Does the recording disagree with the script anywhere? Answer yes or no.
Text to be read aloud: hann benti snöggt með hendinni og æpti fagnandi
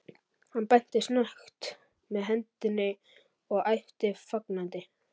no